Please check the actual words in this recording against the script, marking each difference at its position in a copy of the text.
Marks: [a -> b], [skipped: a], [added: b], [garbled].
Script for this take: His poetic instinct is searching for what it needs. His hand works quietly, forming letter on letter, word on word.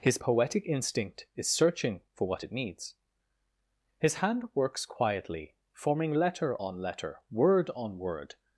His poetic instinct is searching for what it needs. His hand works quietly, forming letter on letter, word on word.